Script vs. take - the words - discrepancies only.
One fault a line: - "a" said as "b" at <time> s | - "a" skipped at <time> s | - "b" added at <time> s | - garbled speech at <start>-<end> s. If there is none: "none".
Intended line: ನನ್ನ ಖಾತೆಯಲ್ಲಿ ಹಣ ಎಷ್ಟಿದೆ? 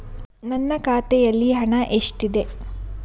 none